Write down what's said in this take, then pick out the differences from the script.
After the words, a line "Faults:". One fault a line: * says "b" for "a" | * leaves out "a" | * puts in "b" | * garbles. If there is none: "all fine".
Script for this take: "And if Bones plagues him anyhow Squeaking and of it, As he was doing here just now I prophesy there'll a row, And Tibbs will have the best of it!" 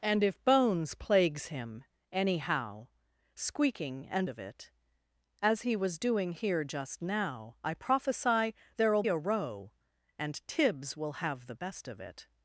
"And if Bones plagues him anyhow Squeaking and of it, As he was doing here just now I prophesy there'll a row, And Tibbs will have the best of it!"
Faults:
all fine